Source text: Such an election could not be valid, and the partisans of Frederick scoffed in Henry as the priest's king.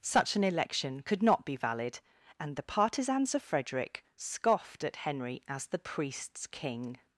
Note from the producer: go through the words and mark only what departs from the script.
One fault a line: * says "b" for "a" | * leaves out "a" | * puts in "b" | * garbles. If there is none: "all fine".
* says "at" for "in"